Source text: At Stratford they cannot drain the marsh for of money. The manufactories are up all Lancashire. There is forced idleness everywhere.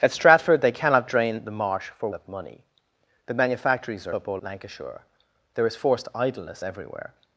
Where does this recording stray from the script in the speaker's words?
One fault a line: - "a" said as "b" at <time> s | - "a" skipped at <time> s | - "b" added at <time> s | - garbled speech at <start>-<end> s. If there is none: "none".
none